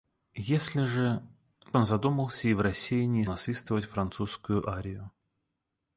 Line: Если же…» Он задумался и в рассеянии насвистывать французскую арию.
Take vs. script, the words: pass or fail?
pass